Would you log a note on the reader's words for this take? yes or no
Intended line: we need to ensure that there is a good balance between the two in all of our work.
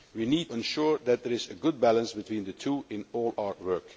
yes